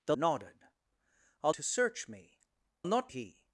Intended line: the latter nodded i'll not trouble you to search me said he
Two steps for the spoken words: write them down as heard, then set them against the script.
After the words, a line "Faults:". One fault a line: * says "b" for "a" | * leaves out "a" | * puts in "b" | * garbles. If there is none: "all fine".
the nodded i'll to search me not he
Faults:
* leaves out "latter"
* leaves out "not trouble you"
* says "not" for "said"